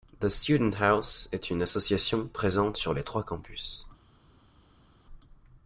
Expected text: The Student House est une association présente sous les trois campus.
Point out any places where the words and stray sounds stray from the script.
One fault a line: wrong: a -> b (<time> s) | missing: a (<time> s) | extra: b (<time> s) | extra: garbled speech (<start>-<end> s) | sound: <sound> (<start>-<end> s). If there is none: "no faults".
wrong: sous -> sur (2.8 s)